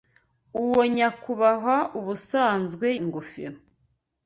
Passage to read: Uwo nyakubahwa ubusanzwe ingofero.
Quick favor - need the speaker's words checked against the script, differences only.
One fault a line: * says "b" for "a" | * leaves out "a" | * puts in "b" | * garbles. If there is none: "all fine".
all fine